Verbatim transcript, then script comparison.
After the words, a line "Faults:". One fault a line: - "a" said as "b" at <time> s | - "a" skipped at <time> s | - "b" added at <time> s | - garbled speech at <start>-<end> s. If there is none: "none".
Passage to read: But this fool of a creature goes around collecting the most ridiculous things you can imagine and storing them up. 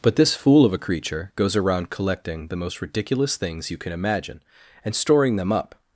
But this fool of a creature goes around collecting the most ridiculous things you can imagine and storing them up.
Faults:
none